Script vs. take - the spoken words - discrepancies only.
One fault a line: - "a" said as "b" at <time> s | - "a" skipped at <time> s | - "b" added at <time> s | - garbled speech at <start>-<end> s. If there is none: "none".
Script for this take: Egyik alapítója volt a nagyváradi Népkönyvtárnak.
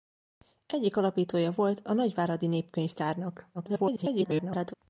- garbled speech at 3.5-4.7 s